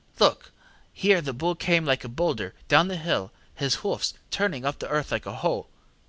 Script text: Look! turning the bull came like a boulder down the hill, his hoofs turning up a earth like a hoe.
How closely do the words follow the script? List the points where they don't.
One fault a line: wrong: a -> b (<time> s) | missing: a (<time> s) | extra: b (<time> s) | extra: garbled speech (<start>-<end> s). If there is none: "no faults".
wrong: turning -> here (0.9 s)
wrong: a -> the (4.8 s)